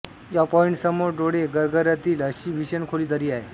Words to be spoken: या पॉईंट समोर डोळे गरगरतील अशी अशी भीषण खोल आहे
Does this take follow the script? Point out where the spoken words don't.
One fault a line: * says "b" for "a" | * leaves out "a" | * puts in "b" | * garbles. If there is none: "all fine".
* leaves out "अशी"
* puts in "दरी"